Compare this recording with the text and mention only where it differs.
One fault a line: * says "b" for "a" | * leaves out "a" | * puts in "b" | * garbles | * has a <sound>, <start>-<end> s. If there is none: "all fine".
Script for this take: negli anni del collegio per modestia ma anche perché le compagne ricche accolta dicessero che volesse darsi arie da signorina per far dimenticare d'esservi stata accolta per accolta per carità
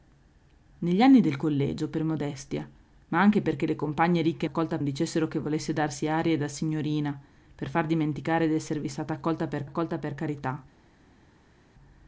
all fine